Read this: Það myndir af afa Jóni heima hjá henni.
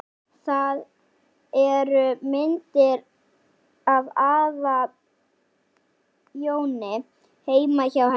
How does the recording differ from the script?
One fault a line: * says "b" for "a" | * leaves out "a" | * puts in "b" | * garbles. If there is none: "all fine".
* puts in "eru"